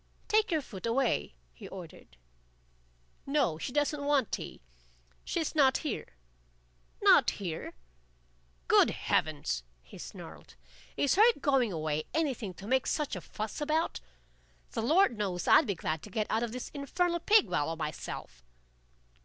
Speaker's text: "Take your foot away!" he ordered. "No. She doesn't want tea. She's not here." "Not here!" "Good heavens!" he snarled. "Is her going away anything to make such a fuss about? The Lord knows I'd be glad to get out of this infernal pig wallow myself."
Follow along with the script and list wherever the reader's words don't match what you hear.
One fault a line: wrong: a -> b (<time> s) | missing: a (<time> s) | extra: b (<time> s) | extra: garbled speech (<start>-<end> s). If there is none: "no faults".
no faults